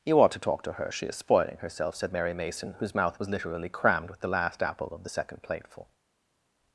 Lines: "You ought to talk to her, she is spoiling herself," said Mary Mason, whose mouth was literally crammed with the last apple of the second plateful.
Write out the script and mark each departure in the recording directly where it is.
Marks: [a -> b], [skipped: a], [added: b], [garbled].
"You ought to talk to her, she is spoiling herself," said Mary Mason, whose mouth was literally crammed with the last apple of the second plateful.